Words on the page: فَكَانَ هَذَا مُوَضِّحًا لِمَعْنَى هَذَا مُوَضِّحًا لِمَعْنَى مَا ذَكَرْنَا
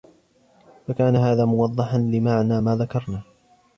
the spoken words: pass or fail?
fail